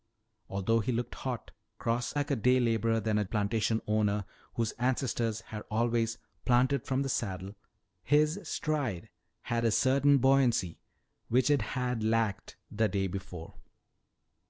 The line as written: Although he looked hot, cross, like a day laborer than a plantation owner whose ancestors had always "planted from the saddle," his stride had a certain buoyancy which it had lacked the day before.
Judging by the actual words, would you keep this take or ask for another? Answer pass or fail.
pass